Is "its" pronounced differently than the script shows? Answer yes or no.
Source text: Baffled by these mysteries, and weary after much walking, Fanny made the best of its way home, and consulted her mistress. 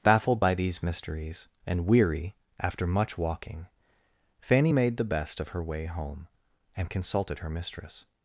yes